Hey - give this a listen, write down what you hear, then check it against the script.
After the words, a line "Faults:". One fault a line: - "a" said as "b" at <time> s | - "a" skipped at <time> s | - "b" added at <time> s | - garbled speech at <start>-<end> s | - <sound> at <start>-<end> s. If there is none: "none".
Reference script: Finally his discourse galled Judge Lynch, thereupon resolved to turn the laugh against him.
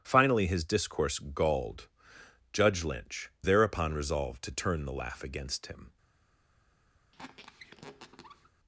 Finally his discourse galled Judge Lynch, thereupon resolved to turn the laugh against him.
Faults:
- squeak at 7.1-8.5 s